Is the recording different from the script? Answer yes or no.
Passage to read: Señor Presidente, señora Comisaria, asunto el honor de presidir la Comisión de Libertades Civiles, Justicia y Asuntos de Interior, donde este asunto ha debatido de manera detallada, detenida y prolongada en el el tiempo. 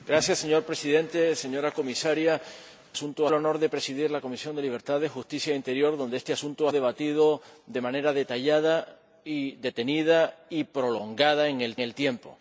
no